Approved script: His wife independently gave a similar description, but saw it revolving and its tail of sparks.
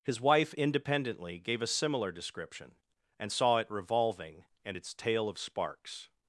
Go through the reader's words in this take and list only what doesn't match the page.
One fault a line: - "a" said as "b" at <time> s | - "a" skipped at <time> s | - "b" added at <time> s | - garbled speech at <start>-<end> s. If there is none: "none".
- "but" said as "and" at 3.2 s